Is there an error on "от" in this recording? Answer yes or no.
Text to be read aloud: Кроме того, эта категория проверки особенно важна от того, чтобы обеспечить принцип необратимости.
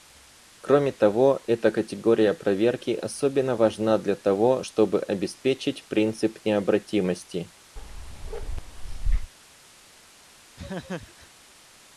yes